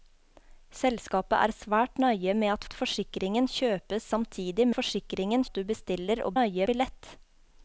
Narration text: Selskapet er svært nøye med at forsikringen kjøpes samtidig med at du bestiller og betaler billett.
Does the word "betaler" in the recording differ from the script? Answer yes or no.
yes